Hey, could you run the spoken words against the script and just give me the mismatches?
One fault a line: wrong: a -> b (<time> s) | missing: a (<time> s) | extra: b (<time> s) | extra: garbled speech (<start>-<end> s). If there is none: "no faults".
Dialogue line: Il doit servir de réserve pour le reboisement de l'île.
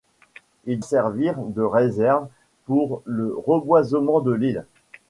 missing: doit (0.8 s)